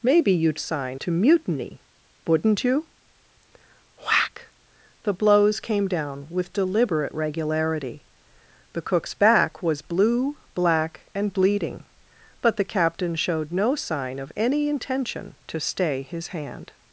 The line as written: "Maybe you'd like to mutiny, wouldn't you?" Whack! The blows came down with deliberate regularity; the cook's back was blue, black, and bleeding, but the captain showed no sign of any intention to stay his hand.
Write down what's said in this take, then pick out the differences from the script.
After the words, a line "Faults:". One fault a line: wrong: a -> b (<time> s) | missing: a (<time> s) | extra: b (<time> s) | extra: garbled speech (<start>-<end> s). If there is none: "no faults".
"Maybe you'd sign to mutiny, wouldn't you?" Whack! The blows came down with deliberate regularity; the cook's back was blue, black, and bleeding, but the captain showed no sign of any intention to stay his hand.
Faults:
wrong: like -> sign (0.5 s)